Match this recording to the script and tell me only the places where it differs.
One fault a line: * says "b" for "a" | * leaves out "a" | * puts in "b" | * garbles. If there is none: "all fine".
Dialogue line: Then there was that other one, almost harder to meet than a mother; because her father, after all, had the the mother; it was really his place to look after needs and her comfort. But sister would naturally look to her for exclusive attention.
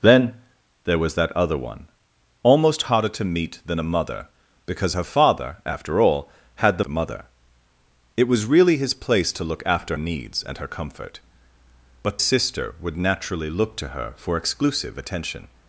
all fine